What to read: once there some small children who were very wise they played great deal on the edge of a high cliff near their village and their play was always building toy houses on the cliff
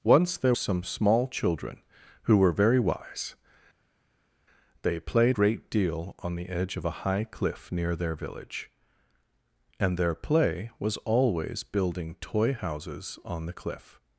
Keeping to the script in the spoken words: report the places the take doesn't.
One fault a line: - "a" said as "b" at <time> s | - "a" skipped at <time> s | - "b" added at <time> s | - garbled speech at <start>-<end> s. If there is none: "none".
none